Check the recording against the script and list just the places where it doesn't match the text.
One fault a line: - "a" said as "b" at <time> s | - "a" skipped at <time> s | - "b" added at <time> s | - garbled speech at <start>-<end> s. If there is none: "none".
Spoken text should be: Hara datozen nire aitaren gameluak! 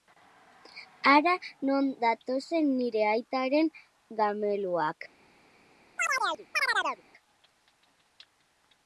- "non" added at 1.7 s